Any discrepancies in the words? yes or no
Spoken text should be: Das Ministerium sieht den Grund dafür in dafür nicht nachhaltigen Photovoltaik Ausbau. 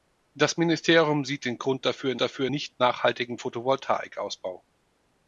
no